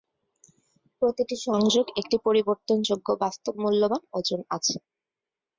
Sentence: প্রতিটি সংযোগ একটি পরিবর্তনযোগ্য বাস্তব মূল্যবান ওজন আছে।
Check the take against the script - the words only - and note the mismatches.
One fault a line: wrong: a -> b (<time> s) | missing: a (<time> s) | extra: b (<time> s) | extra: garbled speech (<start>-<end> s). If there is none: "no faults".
no faults